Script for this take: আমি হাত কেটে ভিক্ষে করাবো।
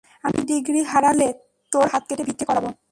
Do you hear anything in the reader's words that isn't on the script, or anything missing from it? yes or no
yes